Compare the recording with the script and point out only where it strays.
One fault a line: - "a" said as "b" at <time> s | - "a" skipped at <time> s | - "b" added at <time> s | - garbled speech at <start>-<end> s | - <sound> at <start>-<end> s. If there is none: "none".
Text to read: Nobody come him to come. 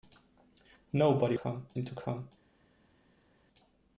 none